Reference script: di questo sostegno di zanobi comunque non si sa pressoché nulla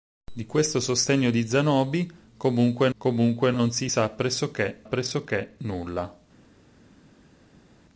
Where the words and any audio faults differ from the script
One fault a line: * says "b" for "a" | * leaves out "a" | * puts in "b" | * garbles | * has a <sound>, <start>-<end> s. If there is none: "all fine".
* puts in "comunque"
* puts in "pressoché"